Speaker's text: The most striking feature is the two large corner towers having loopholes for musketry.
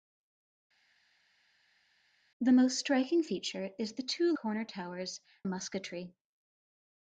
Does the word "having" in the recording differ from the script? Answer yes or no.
yes